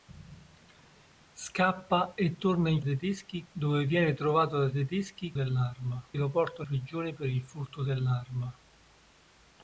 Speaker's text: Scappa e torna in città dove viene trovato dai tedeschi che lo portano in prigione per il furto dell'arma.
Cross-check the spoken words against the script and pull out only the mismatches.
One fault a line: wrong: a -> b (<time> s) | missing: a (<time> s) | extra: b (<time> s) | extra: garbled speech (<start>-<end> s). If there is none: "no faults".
wrong: città -> tedeschi (2.8 s)
wrong: che -> dell'arma (5.3 s)
missing: in (6.7 s)